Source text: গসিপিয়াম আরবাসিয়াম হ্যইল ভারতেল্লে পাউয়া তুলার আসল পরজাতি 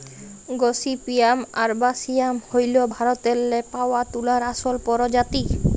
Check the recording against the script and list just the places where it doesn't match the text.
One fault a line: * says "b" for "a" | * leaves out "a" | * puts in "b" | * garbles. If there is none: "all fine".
all fine